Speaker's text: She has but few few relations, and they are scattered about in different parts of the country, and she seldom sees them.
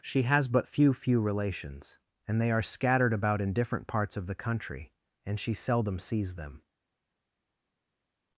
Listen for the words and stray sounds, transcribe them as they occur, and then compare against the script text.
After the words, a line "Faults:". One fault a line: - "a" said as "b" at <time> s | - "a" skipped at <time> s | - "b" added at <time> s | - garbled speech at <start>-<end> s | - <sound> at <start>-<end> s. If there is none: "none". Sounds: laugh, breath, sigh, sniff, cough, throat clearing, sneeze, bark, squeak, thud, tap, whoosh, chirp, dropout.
She has but few few relations, and they are scattered about in different parts of the country, and she seldom sees them.
Faults:
none